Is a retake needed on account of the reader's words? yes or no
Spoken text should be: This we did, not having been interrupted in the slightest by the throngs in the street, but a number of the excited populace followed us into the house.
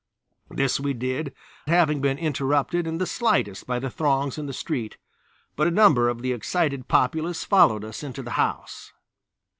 yes